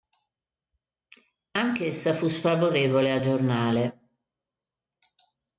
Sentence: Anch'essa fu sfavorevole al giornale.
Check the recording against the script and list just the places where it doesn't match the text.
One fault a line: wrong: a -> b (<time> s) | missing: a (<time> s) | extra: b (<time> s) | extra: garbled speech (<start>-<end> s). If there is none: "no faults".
no faults